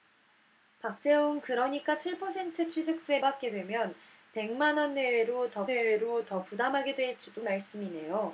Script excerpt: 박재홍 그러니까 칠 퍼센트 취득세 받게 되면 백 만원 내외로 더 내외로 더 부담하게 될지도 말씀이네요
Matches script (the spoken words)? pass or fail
pass